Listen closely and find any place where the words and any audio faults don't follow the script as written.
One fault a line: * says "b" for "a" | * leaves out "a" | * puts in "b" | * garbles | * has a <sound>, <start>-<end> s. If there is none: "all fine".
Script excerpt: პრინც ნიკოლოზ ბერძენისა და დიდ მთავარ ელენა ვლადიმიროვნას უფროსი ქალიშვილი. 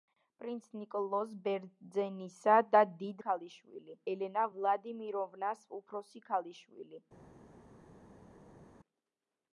* says "ქალიშვილი" for "მთავარ"